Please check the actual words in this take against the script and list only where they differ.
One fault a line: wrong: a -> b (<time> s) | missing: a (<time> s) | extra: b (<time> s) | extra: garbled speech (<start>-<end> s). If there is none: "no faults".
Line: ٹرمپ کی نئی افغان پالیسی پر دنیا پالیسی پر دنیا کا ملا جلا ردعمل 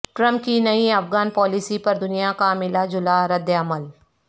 missing: پالیسی پر دنیا (2.3 s)